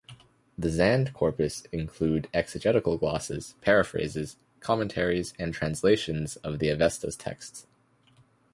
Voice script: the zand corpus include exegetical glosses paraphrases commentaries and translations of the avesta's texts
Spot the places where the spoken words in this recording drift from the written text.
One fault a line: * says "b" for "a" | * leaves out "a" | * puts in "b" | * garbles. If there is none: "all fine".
all fine